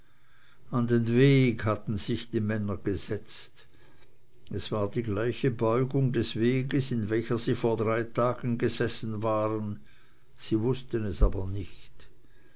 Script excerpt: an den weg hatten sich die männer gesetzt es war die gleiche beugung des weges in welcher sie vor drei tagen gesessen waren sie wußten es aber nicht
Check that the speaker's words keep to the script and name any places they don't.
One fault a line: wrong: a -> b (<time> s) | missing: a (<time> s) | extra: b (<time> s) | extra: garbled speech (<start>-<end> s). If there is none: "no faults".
no faults